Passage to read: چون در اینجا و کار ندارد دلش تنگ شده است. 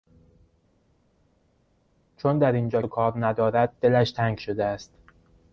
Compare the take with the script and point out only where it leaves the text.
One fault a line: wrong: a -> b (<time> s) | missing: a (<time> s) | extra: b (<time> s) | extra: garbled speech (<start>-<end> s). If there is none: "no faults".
no faults